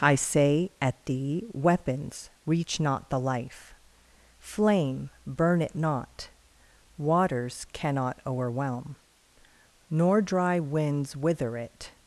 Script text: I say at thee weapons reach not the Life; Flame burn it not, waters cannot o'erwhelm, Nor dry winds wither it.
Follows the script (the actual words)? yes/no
yes